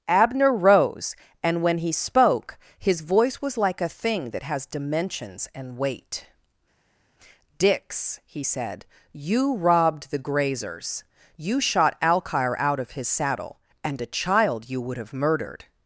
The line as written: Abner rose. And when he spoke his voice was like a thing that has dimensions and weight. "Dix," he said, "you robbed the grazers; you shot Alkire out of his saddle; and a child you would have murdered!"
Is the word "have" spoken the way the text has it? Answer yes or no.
yes